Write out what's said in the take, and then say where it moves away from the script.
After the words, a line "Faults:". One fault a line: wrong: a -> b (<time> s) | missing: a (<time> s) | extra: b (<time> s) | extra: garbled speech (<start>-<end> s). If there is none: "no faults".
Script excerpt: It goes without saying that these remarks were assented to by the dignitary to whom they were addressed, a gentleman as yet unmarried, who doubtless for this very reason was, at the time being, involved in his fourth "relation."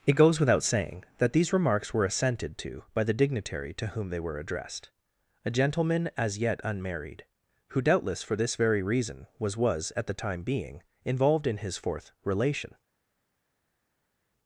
It goes without saying that these remarks were assented to by the dignitary to whom they were addressed, a gentleman as yet unmarried, who doubtless for this very reason was was, at the time being, involved in his fourth "relation."
Faults:
extra: was (9.6 s)